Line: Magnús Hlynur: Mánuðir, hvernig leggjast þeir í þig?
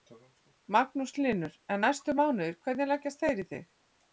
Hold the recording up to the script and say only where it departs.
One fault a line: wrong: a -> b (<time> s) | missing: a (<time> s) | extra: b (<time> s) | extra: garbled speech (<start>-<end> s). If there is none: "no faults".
extra: En næstu (1.8 s)